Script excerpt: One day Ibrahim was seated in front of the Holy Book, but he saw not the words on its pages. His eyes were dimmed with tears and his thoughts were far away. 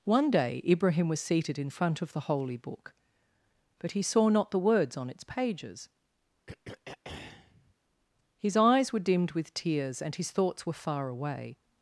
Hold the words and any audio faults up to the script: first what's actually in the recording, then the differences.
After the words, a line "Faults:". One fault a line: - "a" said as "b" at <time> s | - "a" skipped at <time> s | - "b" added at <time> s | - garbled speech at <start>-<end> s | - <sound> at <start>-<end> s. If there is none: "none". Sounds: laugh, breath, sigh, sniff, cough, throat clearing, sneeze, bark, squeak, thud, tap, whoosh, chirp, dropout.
One day Ibrahim was seated in front of the Holy Book, but he saw not the words on its pages. His eyes were dimmed with tears and his thoughts were far away.
Faults:
- throat clearing at 6.5-7.7 s